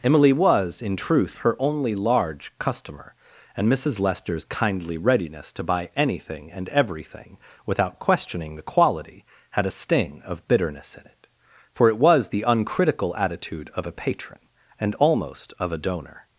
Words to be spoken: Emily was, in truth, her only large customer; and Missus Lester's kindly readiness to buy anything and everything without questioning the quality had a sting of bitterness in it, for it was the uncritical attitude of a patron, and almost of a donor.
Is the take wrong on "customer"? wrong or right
right